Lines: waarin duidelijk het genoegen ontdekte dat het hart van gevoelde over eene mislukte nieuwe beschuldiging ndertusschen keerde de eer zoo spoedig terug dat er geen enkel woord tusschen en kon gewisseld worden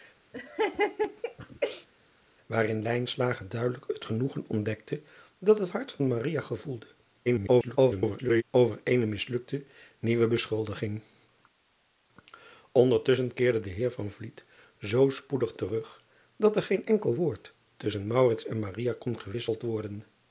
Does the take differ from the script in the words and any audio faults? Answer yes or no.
yes